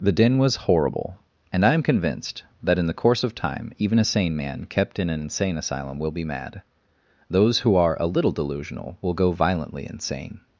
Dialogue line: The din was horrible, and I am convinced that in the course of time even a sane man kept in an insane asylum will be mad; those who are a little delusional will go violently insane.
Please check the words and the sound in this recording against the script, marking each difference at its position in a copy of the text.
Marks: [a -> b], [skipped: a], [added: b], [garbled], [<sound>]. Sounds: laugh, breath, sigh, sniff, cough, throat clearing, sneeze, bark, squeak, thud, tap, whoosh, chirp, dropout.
The din was horrible, and I am convinced that in the course of time even a sane man kept in an insane asylum will be mad; those who are a little delusional will go violently insane.